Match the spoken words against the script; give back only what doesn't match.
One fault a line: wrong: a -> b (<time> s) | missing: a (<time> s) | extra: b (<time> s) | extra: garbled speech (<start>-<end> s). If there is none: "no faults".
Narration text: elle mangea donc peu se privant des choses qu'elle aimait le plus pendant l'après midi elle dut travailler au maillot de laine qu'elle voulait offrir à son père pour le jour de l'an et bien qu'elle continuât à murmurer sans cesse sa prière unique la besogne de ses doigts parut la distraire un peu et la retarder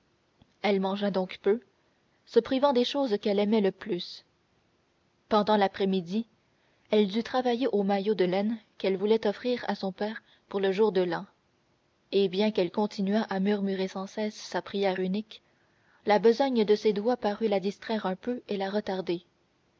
no faults